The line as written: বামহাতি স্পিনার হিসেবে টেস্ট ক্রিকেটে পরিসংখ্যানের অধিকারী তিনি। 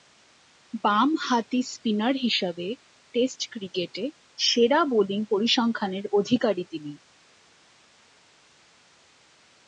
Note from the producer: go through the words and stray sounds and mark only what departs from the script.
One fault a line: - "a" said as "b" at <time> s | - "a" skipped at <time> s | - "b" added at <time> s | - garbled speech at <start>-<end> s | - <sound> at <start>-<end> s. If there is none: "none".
- "সেরা বোলিং" added at 4.4 s